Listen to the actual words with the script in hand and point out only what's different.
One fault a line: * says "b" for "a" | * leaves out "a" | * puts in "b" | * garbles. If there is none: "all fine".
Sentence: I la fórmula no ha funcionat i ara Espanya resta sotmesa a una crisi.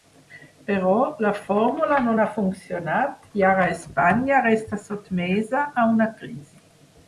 * says "Però" for "I"